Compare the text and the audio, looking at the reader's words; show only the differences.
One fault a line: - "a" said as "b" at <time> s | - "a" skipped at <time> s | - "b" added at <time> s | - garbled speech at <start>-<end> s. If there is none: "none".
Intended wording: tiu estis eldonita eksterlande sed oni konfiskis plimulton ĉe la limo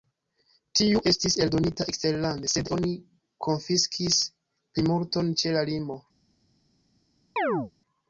none